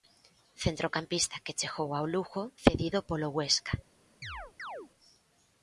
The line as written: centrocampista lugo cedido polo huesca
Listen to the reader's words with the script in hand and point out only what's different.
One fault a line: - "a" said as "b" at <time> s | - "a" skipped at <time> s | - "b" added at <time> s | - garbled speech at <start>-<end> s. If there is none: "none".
- "que chegou ao" added at 1.4 s